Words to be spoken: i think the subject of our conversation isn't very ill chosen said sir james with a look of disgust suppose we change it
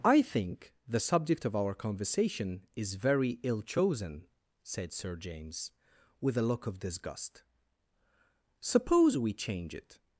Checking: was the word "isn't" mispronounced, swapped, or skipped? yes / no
yes